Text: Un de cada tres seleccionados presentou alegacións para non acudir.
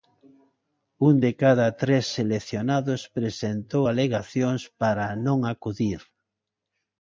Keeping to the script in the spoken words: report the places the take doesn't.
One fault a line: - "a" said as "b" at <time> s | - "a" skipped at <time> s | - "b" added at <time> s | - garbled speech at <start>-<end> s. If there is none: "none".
none